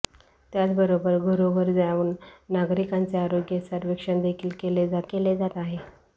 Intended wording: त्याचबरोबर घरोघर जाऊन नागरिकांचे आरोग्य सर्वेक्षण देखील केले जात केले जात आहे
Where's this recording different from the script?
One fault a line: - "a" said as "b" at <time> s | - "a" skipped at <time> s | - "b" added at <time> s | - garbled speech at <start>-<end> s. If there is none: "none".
none